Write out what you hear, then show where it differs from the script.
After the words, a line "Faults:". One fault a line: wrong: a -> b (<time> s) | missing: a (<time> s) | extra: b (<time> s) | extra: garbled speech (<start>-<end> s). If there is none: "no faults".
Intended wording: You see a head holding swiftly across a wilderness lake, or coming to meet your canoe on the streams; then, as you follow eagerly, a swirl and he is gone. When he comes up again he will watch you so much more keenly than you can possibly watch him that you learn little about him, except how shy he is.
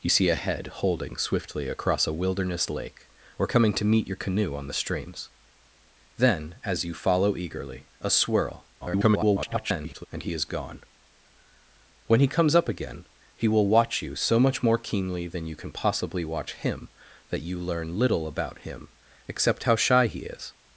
You see a head holding swiftly across a wilderness lake, or coming to meet your canoe on the streams; then, as you follow eagerly, a swirl [garbled] and he is gone. When he comes up again he will watch you so much more keenly than you can possibly watch him that you learn little about him, except how shy he is.
Faults:
extra: garbled speech (8.8-10.1 s)